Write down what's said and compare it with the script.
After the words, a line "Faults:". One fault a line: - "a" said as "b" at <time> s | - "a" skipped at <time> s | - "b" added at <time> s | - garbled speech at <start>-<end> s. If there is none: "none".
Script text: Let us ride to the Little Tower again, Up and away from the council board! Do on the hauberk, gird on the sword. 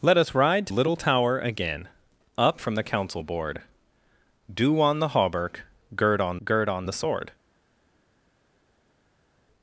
Let us ride to Little Tower again, Up from the council board! Do on the hauberk, gird on gird on the sword.
Faults:
- "the" skipped at 0.7 s
- "and away" skipped at 2.6 s
- "gird on" added at 6.4 s